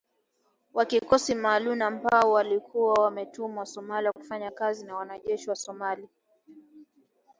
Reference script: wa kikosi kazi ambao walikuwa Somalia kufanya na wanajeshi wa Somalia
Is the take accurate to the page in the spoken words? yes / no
no